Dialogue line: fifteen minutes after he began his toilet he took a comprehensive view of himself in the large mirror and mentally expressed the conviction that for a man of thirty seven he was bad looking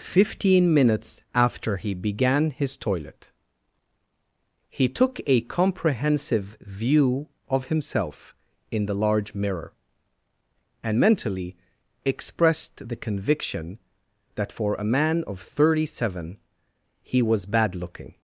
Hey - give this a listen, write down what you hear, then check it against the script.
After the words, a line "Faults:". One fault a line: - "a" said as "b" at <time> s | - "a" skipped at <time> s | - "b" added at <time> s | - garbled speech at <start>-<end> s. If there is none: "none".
fifteen minutes after he began his toilet he took a comprehensive view of himself in the large mirror and mentally expressed the conviction that for a man of thirty seven he was bad looking
Faults:
none